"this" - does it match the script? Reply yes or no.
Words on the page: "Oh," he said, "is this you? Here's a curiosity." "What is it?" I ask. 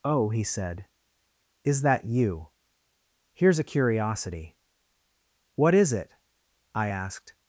no